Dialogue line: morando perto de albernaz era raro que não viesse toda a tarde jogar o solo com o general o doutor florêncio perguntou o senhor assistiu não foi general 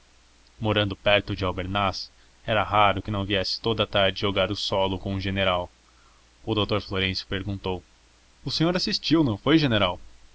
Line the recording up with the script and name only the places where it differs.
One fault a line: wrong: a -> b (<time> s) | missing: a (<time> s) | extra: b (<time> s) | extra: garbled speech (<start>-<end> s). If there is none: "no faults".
no faults